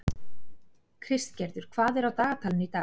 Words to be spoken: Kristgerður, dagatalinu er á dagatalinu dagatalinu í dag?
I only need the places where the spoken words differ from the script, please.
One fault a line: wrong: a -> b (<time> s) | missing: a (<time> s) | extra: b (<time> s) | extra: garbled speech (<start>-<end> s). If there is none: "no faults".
wrong: dagatalinu -> hvað (1.7 s)
missing: dagatalinu (2.7 s)